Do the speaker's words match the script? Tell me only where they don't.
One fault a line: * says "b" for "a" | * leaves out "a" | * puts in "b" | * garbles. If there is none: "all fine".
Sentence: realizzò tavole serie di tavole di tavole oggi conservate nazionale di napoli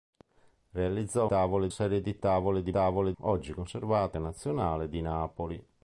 all fine